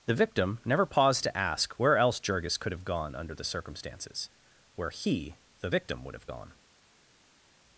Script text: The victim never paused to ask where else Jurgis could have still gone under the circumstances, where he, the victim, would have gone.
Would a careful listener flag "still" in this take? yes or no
yes